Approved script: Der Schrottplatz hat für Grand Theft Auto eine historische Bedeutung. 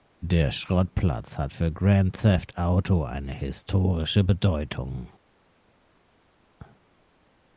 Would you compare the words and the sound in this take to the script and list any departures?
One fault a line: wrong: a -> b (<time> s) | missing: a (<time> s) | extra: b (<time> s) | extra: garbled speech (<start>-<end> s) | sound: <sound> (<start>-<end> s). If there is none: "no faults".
no faults